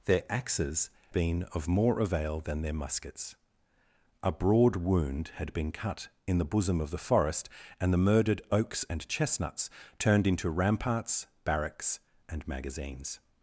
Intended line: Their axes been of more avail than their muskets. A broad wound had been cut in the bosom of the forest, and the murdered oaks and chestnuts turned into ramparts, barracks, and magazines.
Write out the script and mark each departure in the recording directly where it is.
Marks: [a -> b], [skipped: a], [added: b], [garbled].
Their axes been of more avail than their muskets. A broad wound had been cut in the bosom of the forest, and the murdered oaks and chestnuts turned into ramparts, barracks, and magazines.